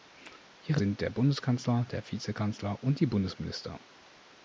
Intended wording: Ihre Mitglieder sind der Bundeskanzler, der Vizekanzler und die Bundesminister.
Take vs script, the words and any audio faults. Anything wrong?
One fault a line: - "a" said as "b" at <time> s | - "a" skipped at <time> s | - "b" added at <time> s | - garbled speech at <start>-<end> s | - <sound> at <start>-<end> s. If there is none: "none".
- "Mitglieder" skipped at 0.8 s